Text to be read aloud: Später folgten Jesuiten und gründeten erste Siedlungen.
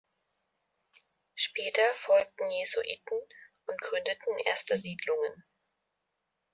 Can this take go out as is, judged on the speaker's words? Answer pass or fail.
pass